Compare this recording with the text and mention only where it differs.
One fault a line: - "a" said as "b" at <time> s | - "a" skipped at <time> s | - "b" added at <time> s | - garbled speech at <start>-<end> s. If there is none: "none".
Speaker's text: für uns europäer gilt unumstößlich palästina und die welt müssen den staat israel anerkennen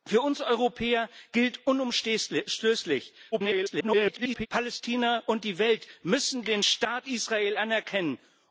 - garbled speech at 3.3-4.5 s